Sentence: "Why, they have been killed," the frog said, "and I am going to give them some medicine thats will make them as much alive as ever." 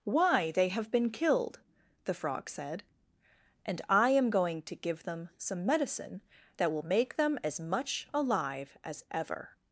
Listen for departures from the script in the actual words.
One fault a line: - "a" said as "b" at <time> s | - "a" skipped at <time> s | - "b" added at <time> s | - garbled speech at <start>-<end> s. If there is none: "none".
- "thats" said as "that" at 6.6 s